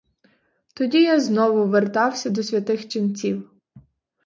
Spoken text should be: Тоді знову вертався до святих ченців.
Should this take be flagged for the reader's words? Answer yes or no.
yes